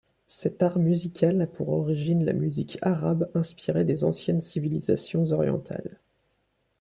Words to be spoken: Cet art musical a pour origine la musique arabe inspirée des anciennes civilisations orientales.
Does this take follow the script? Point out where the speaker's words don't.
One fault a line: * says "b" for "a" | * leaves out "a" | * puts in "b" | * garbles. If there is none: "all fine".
all fine